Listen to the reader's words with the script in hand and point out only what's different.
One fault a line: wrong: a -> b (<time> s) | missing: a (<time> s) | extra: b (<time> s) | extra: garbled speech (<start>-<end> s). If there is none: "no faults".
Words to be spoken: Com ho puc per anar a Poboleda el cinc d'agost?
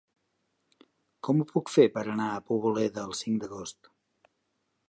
extra: fer (1.7 s)